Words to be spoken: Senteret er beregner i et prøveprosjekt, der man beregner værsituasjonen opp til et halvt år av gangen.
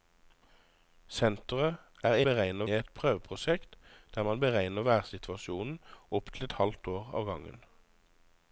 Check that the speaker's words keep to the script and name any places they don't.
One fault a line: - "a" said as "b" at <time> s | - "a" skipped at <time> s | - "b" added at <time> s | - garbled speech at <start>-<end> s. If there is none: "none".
none